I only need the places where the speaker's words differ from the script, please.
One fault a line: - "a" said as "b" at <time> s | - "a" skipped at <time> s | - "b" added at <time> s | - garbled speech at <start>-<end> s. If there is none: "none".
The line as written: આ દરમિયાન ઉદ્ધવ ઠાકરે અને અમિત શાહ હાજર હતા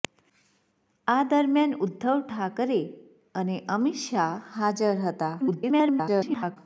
- garbled speech at 5.4-6.6 s